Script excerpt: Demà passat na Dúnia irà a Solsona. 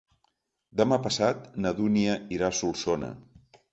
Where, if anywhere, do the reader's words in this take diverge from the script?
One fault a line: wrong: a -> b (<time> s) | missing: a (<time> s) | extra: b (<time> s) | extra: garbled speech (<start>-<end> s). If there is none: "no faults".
no faults